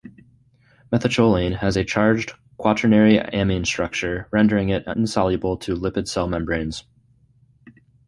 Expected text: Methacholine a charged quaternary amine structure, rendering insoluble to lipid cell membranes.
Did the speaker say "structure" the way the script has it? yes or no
yes